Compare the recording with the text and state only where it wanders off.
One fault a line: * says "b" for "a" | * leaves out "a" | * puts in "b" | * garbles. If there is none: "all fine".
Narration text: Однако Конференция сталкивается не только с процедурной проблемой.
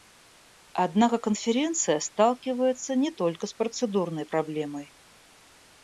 all fine